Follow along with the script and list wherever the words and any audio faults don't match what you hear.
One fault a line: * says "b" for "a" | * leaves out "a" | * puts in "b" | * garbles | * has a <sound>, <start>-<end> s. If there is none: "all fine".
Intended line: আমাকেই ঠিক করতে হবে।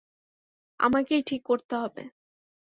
all fine